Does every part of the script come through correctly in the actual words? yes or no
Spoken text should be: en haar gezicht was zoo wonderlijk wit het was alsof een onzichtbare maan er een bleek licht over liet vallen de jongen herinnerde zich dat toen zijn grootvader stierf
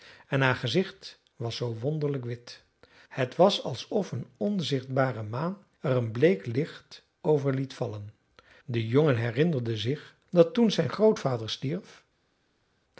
yes